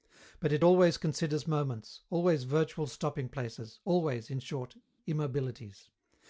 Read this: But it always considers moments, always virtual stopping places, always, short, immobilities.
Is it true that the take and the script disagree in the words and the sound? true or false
true